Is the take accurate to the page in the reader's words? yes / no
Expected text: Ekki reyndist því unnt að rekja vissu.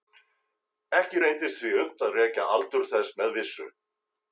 no